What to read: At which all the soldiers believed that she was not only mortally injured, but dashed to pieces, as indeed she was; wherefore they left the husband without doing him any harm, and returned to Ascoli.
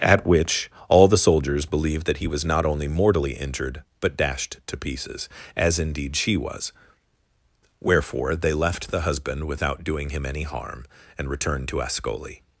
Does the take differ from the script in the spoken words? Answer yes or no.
yes